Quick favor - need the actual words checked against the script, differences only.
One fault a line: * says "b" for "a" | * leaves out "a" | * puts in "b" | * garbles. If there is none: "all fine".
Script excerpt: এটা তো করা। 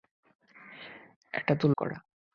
all fine